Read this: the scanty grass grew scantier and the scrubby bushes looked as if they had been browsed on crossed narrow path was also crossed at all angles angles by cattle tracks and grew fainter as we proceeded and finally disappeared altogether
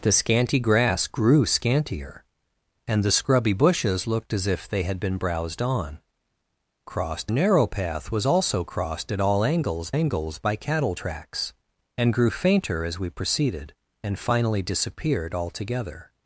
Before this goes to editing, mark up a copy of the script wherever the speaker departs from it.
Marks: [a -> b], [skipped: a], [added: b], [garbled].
the scanty grass grew scantier and the scrubby bushes looked as if they had been browsed on crossed narrow path was also crossed at all angles angles by cattle tracks and grew fainter as we proceeded and finally disappeared altogether